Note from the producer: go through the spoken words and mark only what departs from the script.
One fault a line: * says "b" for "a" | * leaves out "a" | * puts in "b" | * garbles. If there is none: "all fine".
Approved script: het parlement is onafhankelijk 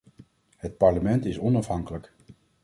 all fine